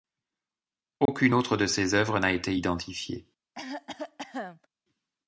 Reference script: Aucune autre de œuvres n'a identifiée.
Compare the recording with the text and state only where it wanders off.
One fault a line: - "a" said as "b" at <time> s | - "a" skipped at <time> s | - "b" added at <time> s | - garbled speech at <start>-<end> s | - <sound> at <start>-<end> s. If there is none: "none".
- dropout at 1.1-1.1 s
- "ses" added at 1.7 s
- "été" added at 2.3 s
- cough at 3.5-4.7 s